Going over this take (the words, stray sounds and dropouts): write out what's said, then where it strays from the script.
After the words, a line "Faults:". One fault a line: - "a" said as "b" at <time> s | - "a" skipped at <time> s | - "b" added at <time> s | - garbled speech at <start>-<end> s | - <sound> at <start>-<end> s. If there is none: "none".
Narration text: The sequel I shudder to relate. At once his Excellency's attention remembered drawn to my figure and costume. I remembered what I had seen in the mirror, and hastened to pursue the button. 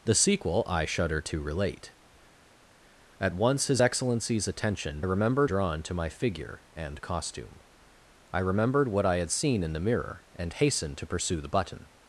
The sequel I shudder to relate. At once his Excellency's attention remembered drawn to my figure and costume. I remembered what I had seen in the mirror, and hastened to pursue the button.
Faults:
none